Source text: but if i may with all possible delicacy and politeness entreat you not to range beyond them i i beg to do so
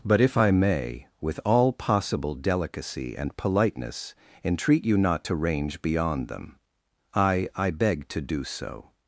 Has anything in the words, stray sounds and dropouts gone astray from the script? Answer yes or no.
no